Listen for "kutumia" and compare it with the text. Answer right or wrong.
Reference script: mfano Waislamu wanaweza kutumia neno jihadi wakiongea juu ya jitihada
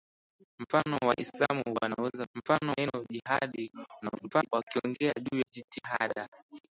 wrong